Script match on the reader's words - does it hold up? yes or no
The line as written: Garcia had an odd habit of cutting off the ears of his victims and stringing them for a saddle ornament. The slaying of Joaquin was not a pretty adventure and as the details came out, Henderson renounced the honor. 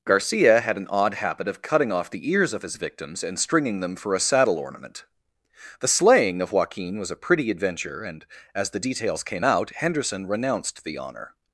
no